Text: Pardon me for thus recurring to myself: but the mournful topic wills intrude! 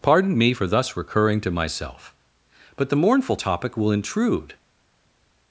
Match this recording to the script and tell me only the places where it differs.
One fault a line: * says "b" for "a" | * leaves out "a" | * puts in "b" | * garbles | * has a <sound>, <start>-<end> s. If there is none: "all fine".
* says "will" for "wills"